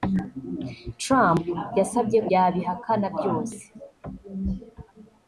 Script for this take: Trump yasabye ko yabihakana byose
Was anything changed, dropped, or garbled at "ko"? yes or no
yes